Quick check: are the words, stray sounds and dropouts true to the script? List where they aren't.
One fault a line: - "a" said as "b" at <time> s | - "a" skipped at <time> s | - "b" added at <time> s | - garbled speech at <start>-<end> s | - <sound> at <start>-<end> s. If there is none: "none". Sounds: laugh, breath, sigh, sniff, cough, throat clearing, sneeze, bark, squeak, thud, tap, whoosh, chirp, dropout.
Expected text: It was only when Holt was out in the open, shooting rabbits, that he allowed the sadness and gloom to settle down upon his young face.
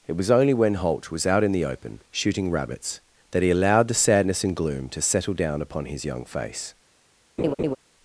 - laugh at 7.4-7.8 s